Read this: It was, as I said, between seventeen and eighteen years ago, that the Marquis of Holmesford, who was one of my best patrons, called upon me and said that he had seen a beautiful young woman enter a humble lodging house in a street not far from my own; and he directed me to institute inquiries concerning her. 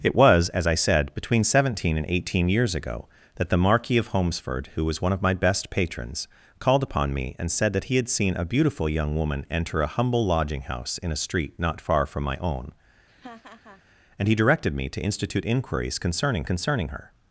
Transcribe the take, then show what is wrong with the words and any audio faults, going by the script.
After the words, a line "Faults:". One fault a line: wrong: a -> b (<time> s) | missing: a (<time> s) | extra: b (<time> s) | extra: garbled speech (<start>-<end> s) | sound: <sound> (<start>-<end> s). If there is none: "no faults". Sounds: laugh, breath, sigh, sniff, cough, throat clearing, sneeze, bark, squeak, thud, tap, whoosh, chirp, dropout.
It was, as I said, between seventeen and eighteen years ago, that the Marquis of Holmesford, who was one of my best patrons, called upon me and said that he had seen a beautiful young woman enter a humble lodging house in a street not far from my own; and he directed me to institute inquiries concerning concerning her.
Faults:
sound: laugh (13.1-13.8 s)
extra: concerning (16.4 s)